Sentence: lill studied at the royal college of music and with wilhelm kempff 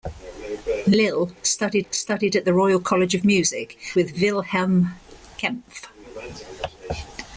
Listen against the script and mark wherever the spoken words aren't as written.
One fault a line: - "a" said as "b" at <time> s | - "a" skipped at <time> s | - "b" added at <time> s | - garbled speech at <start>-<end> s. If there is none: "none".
- "studied" added at 1.9 s
- "and" skipped at 3.8 s